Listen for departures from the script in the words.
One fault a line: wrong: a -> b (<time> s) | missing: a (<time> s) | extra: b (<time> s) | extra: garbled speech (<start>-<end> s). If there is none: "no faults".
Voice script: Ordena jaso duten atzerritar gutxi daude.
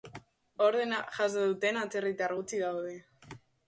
no faults